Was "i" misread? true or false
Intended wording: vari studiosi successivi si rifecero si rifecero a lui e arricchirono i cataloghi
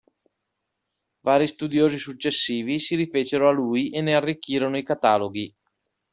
false